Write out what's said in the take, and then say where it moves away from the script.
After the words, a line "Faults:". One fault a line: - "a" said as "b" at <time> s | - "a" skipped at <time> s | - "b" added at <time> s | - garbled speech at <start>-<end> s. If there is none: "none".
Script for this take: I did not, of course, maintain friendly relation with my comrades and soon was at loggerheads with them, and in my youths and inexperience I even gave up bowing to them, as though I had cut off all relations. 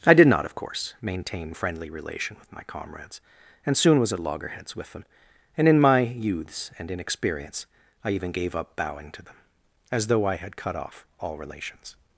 I did not, of course, maintain friendly relation with my comrades and soon was at loggerheads with them, and in my youths and inexperience I even gave up bowing to them, as though I had cut off all relations.
Faults:
none